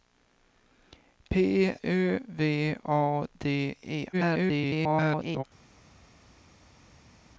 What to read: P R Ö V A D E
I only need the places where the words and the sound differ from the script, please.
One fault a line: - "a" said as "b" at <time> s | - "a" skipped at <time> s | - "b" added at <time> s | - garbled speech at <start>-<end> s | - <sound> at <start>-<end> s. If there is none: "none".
- "R" skipped at 1.8 s
- garbled speech at 4.1-5.4 s